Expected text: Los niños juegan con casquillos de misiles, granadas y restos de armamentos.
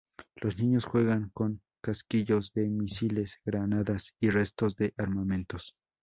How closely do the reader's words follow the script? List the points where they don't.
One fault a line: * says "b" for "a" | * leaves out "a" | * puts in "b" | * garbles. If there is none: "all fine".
all fine